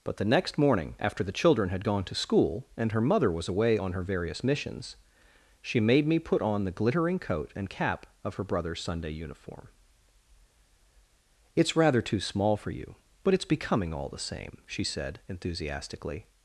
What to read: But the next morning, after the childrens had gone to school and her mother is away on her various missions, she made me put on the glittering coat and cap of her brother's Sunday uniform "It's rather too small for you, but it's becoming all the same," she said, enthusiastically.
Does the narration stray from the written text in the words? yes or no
yes